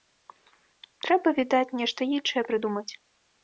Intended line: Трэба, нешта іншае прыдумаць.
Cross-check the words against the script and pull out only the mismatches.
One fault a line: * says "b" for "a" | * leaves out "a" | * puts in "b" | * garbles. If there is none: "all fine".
* puts in "відаць"